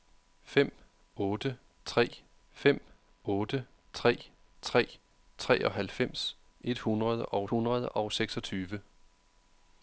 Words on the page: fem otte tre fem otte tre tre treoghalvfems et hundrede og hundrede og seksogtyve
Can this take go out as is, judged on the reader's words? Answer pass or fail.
pass